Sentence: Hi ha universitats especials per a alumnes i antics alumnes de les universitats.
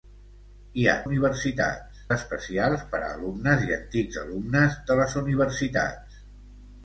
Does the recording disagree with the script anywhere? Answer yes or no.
no